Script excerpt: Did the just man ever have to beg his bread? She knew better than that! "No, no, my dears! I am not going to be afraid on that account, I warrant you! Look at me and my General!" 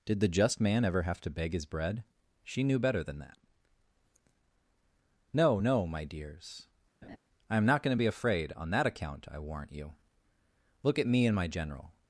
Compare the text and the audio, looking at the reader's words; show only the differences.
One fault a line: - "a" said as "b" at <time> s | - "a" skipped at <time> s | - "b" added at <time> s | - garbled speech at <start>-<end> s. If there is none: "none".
none